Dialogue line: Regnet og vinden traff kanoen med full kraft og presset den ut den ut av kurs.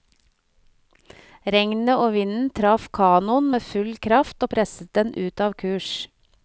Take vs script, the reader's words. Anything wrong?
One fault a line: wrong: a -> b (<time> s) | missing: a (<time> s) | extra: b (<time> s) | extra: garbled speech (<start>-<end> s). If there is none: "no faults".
missing: den ut (5.5 s)